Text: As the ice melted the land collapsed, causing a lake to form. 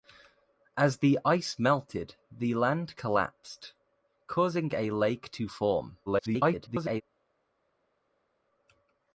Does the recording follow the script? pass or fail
fail